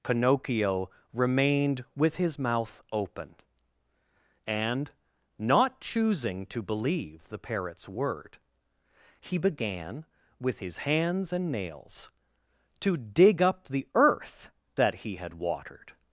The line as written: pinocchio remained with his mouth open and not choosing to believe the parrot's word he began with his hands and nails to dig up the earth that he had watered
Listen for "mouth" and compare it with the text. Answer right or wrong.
right